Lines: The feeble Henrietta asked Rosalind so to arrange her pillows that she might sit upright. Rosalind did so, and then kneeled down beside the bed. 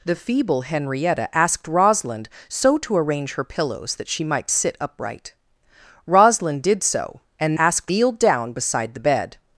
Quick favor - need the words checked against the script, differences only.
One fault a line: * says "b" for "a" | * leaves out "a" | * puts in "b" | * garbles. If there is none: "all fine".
* says "asked" for "then"